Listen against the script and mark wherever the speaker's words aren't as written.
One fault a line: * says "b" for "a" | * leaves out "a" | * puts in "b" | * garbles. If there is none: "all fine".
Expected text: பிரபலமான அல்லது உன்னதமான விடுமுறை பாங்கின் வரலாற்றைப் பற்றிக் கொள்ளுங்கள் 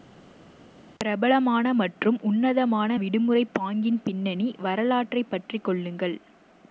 * says "மற்றும்" for "அல்லது"
* puts in "பின்னணி"